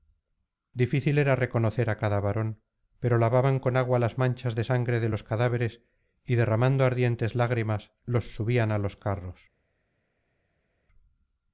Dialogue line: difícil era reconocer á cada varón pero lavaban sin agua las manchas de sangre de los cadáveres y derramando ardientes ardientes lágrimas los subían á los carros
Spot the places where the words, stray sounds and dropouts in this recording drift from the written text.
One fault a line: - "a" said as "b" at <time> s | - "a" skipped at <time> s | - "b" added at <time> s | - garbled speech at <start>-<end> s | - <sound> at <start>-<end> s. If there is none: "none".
- "sin" said as "con" at 3.6 s
- "ardientes" skipped at 7.4 s